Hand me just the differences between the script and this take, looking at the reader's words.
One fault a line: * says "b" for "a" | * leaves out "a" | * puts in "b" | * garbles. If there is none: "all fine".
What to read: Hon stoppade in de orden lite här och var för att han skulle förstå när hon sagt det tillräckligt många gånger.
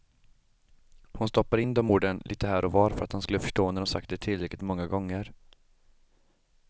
all fine